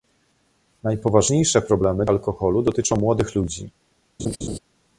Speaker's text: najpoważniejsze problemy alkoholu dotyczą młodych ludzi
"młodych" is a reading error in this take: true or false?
false